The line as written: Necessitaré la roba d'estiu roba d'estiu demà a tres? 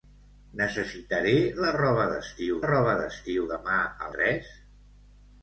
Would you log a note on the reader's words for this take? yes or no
no